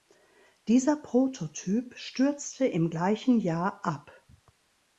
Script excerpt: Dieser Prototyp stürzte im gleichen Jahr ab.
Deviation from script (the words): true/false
false